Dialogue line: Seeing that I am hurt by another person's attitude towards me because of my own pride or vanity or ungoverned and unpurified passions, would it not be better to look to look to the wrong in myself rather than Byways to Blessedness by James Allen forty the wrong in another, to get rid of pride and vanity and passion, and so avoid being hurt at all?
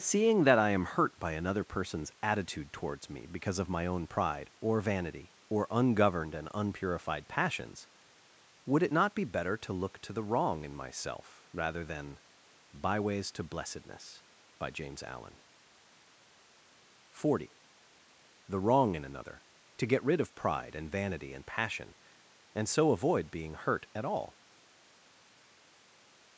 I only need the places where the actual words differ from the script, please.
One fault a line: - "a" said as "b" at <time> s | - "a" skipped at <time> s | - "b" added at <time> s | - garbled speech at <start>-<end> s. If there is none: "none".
- "look to" skipped at 10.1 s